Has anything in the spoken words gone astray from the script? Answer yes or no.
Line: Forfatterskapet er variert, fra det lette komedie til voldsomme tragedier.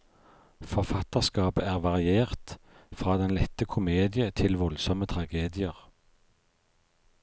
yes